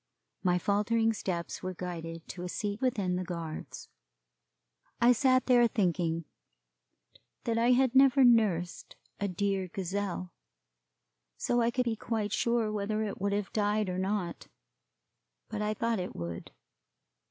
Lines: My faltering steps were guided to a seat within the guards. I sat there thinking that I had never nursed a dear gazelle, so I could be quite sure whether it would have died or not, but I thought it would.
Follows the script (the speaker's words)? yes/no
yes